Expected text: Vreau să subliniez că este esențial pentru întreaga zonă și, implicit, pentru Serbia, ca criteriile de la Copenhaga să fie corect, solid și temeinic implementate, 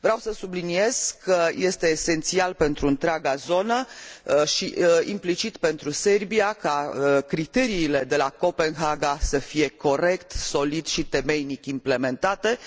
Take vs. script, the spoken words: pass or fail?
pass